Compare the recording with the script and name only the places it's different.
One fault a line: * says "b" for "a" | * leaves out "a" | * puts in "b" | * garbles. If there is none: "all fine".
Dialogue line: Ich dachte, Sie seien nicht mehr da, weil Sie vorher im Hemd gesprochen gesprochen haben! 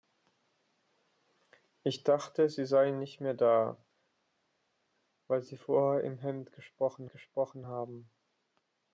all fine